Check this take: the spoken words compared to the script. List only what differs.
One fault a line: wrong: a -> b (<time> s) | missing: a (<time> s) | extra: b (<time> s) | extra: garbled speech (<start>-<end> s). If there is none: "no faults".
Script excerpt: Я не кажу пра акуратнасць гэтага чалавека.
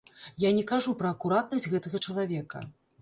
no faults